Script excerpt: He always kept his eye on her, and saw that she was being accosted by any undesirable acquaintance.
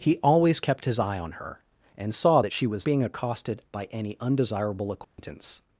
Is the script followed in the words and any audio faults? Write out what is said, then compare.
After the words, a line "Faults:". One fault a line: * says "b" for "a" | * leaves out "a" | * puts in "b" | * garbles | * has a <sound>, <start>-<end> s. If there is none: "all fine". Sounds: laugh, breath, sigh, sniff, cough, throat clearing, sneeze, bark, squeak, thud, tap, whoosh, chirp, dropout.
He always kept his eye on her, and saw that she was being accosted by any undesirable acquaintance.
Faults:
* has a dropout, 5.0-5.2 s